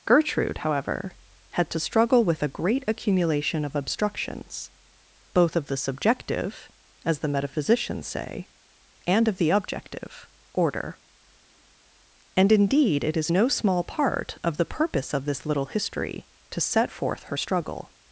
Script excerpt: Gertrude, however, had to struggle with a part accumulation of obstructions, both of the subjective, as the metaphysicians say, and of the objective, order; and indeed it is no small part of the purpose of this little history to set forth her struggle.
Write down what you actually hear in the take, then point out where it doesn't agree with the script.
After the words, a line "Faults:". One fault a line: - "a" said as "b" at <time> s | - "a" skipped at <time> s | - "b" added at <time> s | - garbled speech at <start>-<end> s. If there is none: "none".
Gertrude, however, had to struggle with a great accumulation of obstructions, both of the subjective, as the metaphysicians say, and of the objective, order; and indeed it is no small part of the purpose of this little history to set forth her struggle.
Faults:
- "part" said as "great" at 2.5 s